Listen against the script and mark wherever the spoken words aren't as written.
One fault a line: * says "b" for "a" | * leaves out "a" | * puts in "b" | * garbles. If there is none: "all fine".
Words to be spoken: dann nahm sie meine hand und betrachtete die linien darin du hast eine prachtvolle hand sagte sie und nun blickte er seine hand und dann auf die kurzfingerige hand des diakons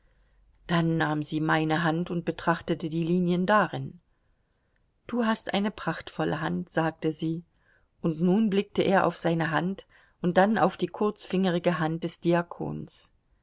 * puts in "auf"